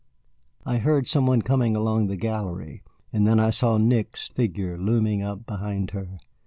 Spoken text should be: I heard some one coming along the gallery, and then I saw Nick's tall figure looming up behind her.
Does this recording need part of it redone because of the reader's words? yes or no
yes